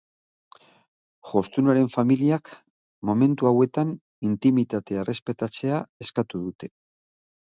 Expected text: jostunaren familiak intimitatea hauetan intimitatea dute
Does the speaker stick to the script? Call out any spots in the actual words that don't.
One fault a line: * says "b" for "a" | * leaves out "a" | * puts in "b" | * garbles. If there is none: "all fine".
* says "momentu" for "intimitatea"
* puts in "errespetatzea eskatu"